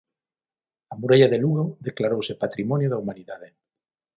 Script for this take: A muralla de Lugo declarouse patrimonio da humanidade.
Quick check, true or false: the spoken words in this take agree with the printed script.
true